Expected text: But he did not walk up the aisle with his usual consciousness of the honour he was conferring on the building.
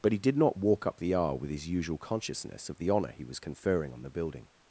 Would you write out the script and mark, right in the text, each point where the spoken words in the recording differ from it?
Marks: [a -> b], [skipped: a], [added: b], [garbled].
But he did not walk up the aisle with his usual consciousness of the honour he was conferring on the building.